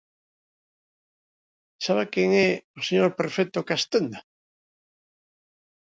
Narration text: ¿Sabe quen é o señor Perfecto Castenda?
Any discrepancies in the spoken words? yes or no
no